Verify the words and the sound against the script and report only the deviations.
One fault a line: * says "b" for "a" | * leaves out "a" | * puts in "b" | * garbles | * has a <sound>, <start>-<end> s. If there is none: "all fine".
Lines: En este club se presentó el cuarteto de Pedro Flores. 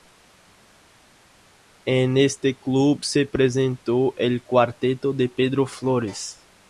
all fine